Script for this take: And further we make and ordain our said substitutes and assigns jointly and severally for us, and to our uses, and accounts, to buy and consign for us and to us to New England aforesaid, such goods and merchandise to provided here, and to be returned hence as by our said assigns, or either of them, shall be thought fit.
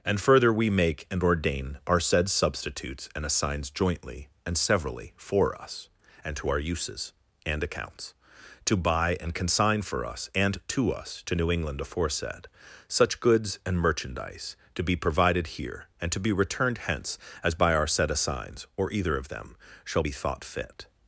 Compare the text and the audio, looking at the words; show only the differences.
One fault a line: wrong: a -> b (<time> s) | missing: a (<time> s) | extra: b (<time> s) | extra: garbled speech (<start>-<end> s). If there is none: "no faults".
extra: be (14.8 s)